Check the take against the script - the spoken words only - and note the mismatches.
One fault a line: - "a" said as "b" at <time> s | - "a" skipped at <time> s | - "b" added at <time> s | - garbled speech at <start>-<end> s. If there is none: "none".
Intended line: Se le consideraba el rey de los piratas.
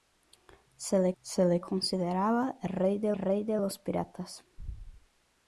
- "se le" added at 1.2 s
- "rey de" added at 3.2 s